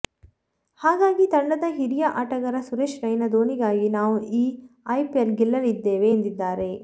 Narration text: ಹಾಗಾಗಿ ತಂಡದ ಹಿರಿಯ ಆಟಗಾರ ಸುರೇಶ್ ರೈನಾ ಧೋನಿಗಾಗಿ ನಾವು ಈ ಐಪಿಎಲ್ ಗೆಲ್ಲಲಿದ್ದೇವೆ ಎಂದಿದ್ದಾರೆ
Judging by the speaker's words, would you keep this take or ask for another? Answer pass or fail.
pass